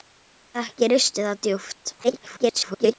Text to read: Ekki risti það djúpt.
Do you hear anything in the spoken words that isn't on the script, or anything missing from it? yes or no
yes